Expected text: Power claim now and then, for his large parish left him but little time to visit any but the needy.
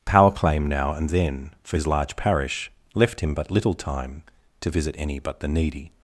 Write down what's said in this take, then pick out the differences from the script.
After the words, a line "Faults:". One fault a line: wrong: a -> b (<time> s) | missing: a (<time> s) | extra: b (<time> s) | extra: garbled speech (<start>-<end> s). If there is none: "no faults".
Power claim now and then, for his large parish left him but little time to visit any but the needy.
Faults:
no faults